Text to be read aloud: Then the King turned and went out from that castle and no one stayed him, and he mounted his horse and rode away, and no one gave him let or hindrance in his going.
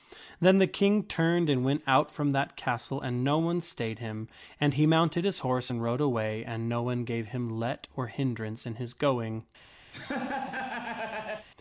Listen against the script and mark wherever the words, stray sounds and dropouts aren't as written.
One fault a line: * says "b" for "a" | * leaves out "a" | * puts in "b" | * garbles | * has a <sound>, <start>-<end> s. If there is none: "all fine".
* has a laugh, 9.9-11.5 s